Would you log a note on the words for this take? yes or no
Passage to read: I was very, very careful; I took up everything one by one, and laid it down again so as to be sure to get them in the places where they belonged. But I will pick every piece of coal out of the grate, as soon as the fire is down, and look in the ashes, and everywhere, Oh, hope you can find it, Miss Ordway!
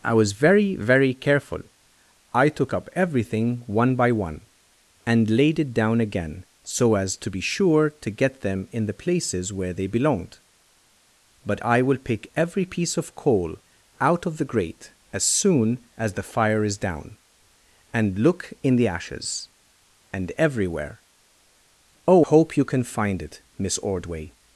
no